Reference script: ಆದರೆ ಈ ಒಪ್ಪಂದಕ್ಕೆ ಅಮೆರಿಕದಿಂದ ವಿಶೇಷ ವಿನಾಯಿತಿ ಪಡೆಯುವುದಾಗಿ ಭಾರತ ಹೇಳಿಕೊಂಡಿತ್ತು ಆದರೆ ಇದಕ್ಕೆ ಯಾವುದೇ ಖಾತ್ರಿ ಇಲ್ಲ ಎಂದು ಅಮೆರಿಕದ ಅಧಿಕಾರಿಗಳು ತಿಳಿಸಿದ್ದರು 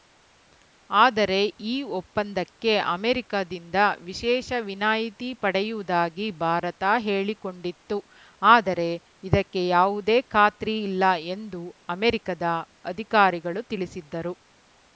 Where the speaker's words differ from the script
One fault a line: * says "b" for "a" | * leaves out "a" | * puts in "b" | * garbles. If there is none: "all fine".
all fine